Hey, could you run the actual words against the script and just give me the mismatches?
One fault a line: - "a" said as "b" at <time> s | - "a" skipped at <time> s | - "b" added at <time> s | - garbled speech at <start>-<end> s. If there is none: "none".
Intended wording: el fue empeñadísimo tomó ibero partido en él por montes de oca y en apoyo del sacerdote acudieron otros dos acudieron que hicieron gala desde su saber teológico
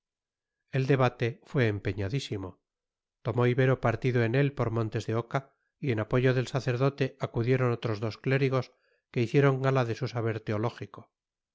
- "debate" added at 0.9 s
- "acudieron" said as "clérigos" at 8.2 s
- "desde" said as "de" at 9.8 s